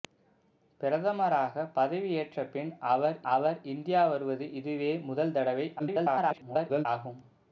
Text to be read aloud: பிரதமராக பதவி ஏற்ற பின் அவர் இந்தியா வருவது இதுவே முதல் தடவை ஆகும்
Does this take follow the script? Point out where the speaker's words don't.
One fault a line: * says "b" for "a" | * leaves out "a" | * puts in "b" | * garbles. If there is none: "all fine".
* puts in "அவர்"
* garbles